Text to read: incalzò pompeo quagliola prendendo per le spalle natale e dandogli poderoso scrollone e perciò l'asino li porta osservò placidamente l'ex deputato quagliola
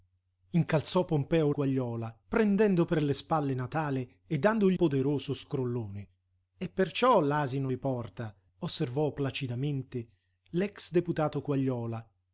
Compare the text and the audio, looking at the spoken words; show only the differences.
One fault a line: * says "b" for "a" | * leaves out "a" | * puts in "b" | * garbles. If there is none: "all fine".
all fine